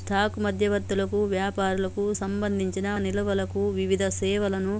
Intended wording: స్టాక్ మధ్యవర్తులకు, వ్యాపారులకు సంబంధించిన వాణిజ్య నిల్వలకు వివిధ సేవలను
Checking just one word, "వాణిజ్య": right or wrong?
wrong